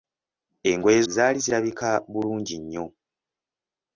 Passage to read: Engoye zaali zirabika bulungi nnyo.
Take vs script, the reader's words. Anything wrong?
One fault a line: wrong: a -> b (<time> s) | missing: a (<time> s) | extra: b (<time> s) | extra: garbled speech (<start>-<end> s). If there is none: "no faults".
no faults